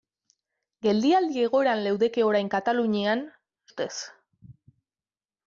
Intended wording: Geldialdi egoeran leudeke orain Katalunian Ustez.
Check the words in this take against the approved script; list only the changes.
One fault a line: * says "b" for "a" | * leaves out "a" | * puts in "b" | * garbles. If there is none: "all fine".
all fine